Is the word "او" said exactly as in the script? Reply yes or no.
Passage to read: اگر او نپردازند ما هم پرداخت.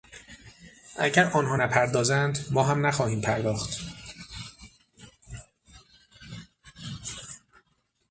no